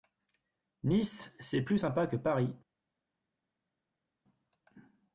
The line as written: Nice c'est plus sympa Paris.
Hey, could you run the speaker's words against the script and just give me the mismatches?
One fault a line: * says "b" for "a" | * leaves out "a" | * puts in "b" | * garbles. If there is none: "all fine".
* puts in "que"